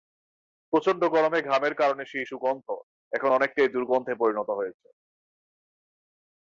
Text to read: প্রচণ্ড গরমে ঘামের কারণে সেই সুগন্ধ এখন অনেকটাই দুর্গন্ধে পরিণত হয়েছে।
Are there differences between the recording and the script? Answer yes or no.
no